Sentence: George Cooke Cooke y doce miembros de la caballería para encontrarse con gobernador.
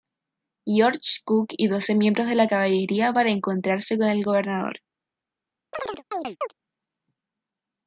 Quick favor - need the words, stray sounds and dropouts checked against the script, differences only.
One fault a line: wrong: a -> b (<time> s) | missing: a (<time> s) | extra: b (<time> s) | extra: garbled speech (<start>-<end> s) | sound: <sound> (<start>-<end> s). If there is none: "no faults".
missing: Cooke (1.5 s)
extra: el (4.1 s)
sound: chirp (5.7-6.5 s)